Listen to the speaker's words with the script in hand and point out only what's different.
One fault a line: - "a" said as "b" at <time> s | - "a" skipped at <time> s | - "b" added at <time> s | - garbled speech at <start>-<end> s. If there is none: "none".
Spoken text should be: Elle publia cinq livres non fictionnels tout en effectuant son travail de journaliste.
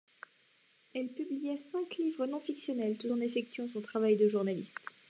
none